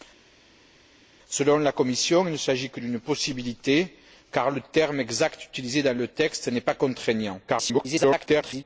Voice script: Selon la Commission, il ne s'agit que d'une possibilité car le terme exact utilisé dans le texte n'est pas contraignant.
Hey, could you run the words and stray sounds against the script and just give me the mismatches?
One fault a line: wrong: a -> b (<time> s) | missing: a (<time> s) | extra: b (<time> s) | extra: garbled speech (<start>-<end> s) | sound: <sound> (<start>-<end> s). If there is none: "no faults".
extra: garbled speech (7.5-8.6 s)